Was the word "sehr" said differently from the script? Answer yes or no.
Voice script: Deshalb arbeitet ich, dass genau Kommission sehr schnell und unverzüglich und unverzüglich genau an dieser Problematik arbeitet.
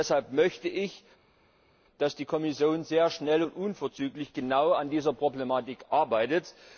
no